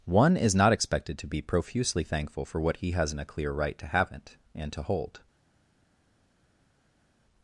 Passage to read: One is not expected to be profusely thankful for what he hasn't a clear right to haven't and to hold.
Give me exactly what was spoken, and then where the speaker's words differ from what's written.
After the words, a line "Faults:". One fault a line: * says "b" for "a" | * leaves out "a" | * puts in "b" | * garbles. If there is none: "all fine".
One is not expected to be profusely thankful for what he hasn't a clear right to haven't and to hold.
Faults:
all fine